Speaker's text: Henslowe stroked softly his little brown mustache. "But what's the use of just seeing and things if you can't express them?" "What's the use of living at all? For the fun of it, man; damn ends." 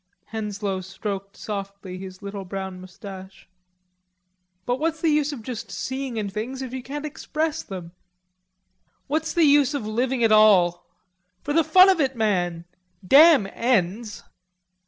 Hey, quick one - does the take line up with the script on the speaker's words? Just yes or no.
yes